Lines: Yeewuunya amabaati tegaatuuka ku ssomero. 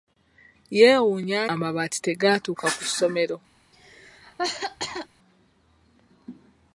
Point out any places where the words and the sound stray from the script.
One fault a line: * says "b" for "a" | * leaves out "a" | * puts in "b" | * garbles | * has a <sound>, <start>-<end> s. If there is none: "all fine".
* has a cough, 3.7-5.1 s